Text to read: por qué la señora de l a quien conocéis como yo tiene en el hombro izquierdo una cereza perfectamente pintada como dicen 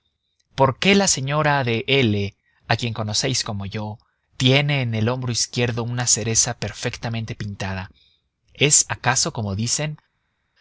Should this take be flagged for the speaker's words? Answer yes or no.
yes